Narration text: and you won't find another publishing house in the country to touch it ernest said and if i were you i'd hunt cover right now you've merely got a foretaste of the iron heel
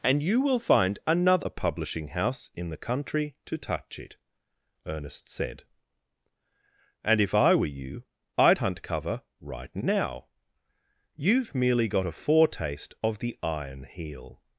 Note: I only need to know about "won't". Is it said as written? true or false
false